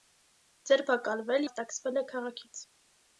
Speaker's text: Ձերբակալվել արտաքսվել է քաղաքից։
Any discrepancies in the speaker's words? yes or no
no